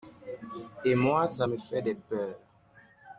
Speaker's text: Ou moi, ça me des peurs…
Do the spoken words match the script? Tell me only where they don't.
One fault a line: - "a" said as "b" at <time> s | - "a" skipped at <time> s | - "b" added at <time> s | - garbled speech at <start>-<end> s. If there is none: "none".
- "Ou" said as "Et" at 0.8 s
- "fait" added at 1.6 s